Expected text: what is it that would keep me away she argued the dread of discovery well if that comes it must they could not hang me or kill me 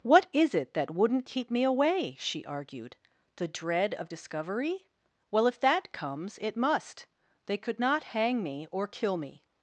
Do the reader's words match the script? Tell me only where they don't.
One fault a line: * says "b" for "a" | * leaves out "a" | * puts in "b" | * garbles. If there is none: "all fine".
* says "wouldn't" for "would"